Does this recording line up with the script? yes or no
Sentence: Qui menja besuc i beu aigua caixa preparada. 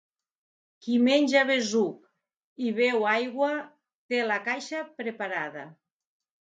no